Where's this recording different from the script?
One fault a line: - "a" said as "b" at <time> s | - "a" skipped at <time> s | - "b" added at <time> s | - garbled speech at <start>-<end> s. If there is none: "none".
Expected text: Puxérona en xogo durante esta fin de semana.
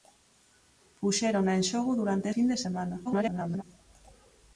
- "esta" skipped at 2.3 s
- garbled speech at 3.0-3.6 s